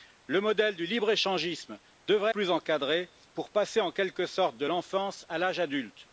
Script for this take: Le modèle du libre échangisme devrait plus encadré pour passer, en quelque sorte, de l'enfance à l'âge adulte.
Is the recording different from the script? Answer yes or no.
no